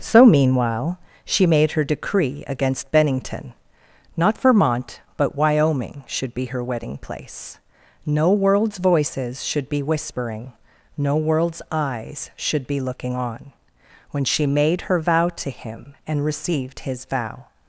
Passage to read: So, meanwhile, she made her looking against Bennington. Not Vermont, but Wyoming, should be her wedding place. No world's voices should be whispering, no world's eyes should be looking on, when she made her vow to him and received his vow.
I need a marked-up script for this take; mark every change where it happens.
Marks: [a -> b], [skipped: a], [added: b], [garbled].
So, meanwhile, she made her [looking -> decree] against Bennington. Not Vermont, but Wyoming, should be her wedding place. No world's voices should be whispering, no world's eyes should be looking on, when she made her vow to him and received his vow.